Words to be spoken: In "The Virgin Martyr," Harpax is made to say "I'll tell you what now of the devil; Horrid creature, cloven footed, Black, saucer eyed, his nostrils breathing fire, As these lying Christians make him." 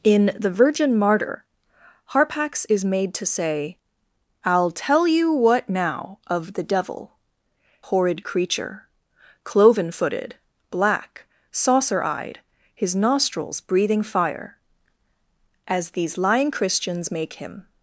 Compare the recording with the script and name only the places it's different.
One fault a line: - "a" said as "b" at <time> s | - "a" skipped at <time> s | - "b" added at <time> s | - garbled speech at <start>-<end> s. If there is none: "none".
none